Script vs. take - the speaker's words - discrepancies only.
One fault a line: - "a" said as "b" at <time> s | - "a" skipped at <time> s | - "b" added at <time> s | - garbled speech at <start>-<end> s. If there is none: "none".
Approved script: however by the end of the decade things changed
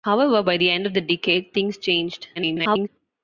- garbled speech at 2.4-2.9 s